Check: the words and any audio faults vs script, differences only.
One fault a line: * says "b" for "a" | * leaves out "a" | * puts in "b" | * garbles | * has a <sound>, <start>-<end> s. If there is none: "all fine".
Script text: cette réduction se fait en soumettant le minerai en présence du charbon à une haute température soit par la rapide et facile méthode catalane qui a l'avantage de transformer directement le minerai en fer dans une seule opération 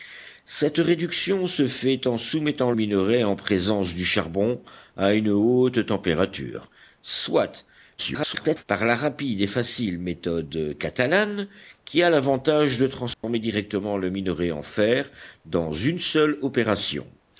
* leaves out "le"
* garbles
* has a dropout, 13.1-13.2 s